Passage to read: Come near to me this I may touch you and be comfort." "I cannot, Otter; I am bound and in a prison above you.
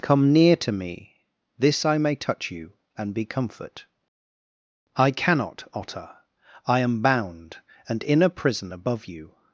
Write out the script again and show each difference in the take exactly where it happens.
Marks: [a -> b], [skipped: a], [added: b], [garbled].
Come near to me this I may touch you and be comfort." "I cannot, Otter; I am bound and in a prison above you.